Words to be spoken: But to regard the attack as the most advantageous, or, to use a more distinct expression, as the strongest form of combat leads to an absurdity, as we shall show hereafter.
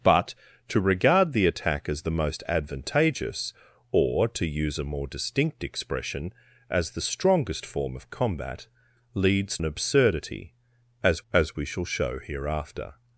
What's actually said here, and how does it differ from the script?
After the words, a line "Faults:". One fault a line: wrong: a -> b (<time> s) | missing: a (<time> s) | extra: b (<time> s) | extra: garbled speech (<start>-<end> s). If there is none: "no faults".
But to regard the attack as the most advantageous, or, to use a more distinct expression, as the strongest form of combat leads an absurdity, as as we shall show hereafter.
Faults:
missing: to (9.6 s)
extra: as (11.3 s)